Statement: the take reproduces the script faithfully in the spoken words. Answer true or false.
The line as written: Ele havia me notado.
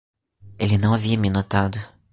false